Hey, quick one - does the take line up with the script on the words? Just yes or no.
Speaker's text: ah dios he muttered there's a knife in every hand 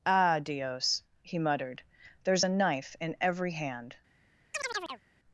yes